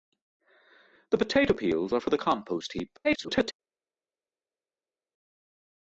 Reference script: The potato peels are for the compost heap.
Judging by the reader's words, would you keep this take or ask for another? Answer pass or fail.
fail